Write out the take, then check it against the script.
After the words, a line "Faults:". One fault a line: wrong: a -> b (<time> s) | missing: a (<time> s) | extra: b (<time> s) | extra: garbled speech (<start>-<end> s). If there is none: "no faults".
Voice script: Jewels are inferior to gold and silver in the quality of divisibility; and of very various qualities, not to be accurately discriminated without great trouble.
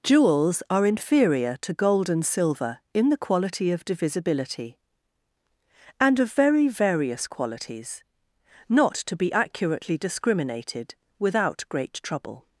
Jewels are inferior to gold and silver in the quality of divisibility; and of very various qualities, not to be accurately discriminated without great trouble.
Faults:
no faults